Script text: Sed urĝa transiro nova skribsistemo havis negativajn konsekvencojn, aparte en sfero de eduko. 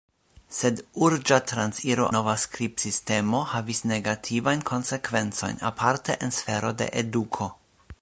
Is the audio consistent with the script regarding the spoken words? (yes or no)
yes